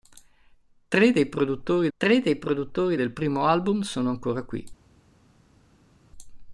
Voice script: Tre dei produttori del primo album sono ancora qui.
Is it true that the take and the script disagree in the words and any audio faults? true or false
true